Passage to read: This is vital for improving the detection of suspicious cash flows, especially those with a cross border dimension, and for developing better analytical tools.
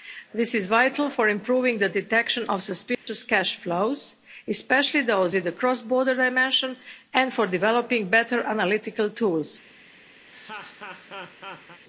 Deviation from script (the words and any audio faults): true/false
true